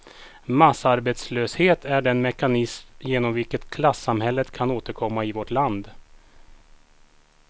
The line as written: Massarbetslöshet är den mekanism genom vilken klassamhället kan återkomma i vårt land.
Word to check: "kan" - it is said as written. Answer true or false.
true